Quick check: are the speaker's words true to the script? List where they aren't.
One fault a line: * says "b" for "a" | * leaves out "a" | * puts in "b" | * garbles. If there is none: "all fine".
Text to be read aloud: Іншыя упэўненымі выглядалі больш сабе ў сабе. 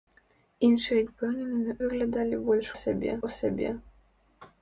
all fine